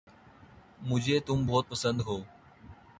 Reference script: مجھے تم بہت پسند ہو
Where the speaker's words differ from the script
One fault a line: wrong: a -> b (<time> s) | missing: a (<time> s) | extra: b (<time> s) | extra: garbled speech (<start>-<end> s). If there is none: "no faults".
no faults